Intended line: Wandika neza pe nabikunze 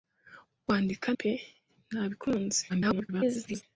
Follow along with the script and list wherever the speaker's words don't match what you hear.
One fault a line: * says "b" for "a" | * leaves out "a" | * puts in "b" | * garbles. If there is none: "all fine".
* leaves out "neza"
* garbles